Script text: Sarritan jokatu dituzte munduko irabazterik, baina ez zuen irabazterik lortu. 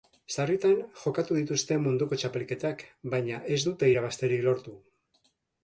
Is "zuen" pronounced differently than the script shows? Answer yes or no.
yes